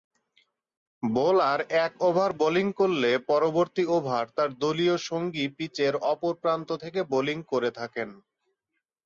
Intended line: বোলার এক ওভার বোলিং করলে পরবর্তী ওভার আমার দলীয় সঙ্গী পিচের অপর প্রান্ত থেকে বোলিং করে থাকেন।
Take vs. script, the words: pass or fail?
fail